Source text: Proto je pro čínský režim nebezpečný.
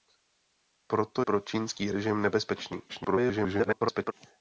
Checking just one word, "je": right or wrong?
wrong